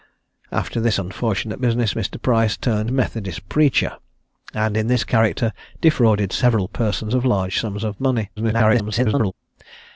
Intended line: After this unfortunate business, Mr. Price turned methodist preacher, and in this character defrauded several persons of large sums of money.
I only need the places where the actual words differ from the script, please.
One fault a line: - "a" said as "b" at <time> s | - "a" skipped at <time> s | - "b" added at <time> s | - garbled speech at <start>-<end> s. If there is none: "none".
- garbled speech at 8.4-9.3 s